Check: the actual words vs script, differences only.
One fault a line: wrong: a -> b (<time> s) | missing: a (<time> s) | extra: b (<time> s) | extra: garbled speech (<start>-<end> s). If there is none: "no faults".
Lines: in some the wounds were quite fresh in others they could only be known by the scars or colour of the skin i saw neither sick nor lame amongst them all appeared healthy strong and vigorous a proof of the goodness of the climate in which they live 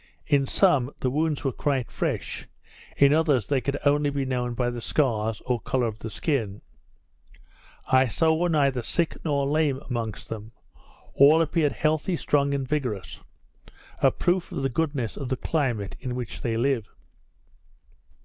no faults